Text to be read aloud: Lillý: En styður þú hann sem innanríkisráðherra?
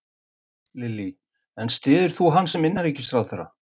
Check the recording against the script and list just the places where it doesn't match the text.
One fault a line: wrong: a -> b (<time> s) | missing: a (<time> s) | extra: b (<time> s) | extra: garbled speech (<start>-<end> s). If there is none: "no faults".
no faults